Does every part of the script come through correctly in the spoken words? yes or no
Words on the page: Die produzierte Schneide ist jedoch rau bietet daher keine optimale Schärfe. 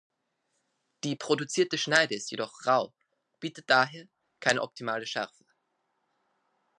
yes